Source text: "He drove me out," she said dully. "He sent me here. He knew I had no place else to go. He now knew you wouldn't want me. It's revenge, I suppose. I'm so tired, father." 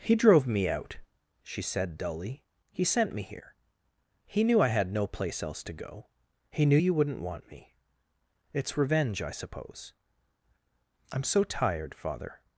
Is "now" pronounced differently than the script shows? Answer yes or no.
yes